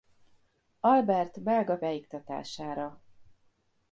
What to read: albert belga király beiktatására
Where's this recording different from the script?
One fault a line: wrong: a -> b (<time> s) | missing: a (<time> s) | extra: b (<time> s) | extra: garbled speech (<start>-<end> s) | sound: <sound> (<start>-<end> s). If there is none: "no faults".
missing: király (1.8 s)